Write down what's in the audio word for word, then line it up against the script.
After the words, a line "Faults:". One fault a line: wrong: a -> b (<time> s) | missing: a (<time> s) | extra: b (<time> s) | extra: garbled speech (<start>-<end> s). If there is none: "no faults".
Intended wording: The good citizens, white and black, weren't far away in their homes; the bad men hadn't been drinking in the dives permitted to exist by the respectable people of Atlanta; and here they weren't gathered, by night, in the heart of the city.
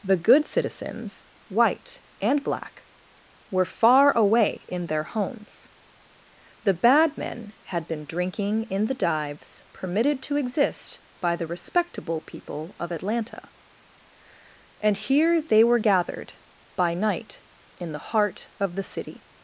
The good citizens, white and black, were far away in their homes; the bad men had been drinking in the dives permitted to exist by the respectable people of Atlanta; and here they were gathered, by night, in the heart of the city.
Faults:
wrong: weren't -> were (3.5 s)
wrong: hadn't -> had (7.7 s)
wrong: weren't -> were (15.6 s)